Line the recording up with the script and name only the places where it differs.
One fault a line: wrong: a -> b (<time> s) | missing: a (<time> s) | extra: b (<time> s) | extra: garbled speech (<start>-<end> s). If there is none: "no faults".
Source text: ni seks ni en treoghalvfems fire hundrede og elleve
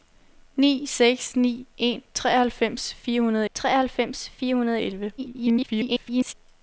extra: treoghalvfems fire hundrede (3.5 s)
extra: garbled speech (5.2-6.3 s)